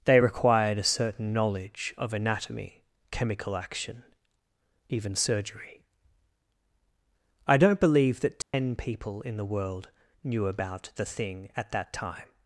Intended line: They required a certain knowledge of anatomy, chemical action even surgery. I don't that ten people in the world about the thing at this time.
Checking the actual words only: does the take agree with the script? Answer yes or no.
no